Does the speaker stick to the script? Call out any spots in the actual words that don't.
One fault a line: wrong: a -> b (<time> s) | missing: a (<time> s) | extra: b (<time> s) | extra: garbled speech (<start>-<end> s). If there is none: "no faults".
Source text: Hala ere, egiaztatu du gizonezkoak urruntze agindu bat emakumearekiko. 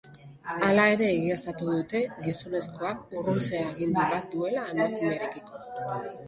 wrong: du -> dute (1.7 s)
extra: duela (4.4 s)